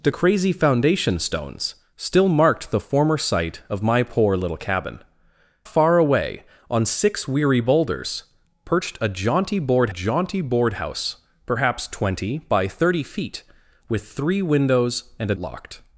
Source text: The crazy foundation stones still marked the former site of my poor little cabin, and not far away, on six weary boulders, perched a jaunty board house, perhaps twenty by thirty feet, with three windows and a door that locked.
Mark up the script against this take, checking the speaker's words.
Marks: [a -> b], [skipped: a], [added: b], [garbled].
The crazy foundation stones still marked the former site of my poor little cabin, [skipped: and not] far away, on six weary boulders, perched a jaunty board [added: jaunty board] house, perhaps twenty by thirty feet, with three windows and a [skipped: door that] locked.